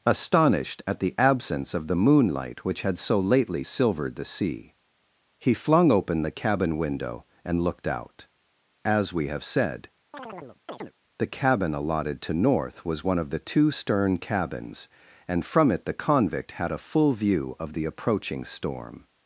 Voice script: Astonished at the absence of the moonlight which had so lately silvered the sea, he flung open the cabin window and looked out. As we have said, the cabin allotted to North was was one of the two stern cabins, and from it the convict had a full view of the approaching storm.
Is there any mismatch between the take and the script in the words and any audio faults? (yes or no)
yes